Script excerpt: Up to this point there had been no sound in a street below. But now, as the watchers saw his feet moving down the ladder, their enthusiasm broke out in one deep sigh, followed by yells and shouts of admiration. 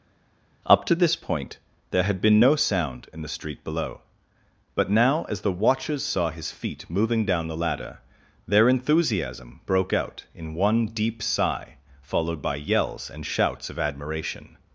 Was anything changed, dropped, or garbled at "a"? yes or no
yes